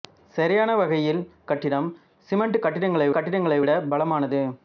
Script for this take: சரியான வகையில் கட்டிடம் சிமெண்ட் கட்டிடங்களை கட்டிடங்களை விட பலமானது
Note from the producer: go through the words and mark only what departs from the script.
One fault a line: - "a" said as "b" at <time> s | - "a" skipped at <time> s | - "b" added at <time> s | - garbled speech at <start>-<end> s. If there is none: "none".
none